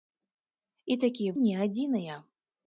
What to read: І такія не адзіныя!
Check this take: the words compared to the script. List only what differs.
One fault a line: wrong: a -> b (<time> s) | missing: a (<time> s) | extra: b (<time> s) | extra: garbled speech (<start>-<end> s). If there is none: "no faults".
no faults